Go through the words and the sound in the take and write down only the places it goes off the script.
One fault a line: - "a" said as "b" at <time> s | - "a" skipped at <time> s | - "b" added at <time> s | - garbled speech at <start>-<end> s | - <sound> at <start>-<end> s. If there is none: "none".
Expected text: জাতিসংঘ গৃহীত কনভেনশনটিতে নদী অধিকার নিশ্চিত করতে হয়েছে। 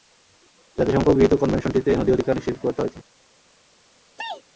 - sneeze at 4.2-4.4 s